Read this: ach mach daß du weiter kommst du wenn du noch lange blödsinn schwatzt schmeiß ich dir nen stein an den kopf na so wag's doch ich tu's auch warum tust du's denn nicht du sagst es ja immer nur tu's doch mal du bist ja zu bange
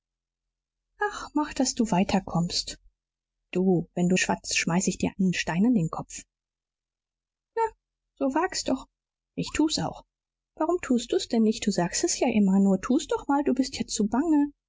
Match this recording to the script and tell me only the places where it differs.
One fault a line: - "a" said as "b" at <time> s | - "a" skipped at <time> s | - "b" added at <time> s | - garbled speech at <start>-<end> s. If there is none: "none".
- "noch lange blödsinn" skipped at 4.2 s